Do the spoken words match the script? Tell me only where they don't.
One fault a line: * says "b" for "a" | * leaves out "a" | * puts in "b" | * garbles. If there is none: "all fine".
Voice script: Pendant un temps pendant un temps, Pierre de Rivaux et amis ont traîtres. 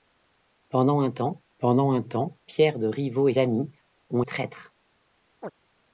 all fine